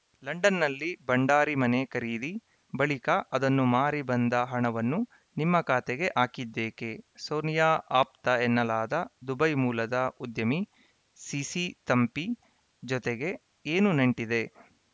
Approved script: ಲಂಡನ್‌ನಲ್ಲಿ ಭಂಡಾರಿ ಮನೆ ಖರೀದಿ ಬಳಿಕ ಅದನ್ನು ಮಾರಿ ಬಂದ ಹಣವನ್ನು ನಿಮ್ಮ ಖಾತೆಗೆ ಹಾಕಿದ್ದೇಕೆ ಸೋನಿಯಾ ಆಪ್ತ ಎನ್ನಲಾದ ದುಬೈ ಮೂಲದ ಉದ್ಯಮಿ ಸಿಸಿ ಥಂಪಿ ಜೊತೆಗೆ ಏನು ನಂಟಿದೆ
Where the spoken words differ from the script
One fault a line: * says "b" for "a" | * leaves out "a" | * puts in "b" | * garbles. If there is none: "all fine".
all fine